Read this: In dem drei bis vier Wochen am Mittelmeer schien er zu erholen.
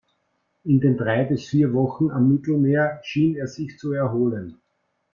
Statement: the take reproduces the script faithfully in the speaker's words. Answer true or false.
false